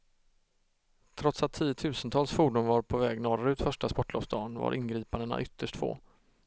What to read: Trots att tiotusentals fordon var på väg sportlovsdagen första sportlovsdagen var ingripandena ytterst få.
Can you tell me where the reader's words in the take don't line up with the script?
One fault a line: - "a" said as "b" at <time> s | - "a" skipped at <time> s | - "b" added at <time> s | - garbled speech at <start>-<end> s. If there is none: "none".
- "sportlovsdagen" said as "norrut" at 3.2 s